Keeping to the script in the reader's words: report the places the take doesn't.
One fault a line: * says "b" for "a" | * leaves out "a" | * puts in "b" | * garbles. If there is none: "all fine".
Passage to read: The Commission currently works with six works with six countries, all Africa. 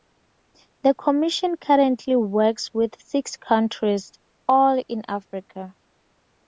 * leaves out "works with six"
* puts in "in"